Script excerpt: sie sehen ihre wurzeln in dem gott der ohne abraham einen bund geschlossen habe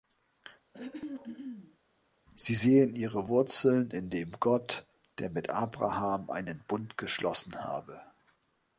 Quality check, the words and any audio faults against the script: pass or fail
fail